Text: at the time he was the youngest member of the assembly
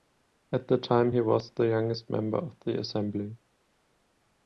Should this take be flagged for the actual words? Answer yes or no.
no